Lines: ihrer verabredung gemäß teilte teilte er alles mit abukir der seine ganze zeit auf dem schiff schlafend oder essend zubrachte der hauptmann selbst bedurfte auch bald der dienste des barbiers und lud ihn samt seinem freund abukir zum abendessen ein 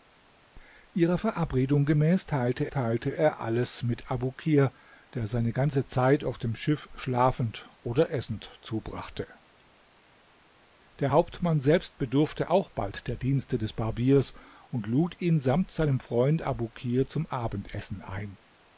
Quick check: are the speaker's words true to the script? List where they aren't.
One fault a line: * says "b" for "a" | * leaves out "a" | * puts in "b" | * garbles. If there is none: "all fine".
all fine